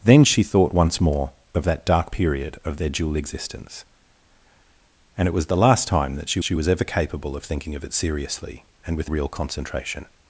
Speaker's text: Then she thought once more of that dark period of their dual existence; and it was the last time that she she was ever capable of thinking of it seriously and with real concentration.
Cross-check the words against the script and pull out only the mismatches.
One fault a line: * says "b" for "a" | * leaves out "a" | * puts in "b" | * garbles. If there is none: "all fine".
all fine